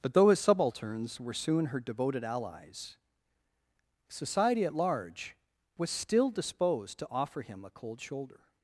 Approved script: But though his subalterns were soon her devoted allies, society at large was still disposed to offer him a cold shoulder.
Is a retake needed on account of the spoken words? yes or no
no